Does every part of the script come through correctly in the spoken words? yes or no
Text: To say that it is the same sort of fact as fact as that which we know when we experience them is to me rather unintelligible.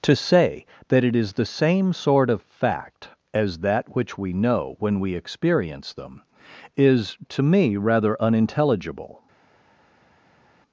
no